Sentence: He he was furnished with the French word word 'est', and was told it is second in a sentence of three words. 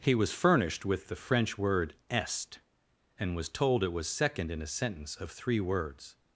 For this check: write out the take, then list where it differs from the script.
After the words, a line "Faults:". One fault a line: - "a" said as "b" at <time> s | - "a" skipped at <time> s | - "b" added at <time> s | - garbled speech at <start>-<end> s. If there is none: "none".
He was furnished with the French word 'est', and was told it was second in a sentence of three words.
Faults:
- "he" skipped at 0.1 s
- "word" skipped at 1.9 s
- "is" said as "was" at 3.9 s